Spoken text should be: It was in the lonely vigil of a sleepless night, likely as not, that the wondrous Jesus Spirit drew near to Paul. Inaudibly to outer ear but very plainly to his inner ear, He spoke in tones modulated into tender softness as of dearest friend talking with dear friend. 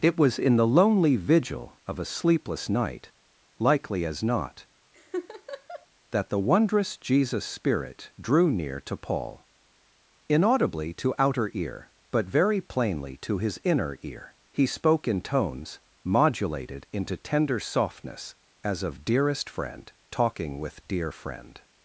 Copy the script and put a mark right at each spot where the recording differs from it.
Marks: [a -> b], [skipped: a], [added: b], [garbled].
It was in the lonely vigil of a sleepless night, likely as not, that the wondrous Jesus Spirit drew near to Paul. Inaudibly to outer ear but very plainly to his inner ear, He spoke in tones modulated into tender softness as of dearest friend talking with dear friend.